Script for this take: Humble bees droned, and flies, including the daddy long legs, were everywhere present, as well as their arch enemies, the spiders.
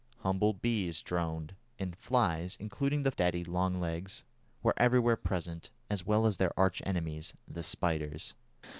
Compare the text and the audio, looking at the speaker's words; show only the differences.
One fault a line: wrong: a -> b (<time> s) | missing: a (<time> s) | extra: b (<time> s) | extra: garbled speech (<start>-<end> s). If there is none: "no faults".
no faults